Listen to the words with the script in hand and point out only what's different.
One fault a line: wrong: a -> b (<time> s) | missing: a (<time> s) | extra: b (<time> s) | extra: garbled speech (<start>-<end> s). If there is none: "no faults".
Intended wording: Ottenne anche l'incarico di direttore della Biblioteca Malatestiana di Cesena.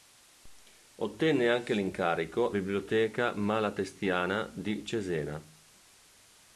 missing: di direttore della (2.5 s)